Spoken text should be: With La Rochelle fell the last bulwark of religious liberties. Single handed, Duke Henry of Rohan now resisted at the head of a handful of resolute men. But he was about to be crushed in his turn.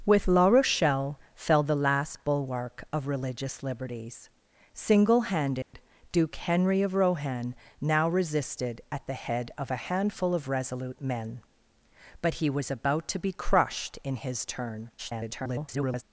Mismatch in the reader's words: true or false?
true